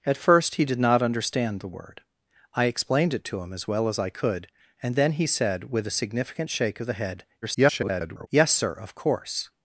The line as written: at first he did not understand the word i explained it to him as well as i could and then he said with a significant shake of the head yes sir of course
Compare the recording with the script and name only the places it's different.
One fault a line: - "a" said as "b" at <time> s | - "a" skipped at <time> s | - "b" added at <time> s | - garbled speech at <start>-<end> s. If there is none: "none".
- garbled speech at 7.4-8.3 s